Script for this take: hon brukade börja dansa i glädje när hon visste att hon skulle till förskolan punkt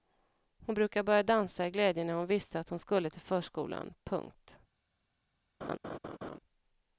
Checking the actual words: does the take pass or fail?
pass